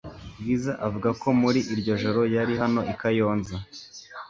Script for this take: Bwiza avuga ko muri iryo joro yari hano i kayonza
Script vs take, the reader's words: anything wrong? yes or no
no